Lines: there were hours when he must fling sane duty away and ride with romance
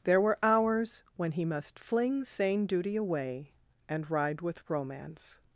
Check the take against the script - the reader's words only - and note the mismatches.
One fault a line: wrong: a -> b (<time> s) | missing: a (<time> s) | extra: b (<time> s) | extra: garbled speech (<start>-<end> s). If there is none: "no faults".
no faults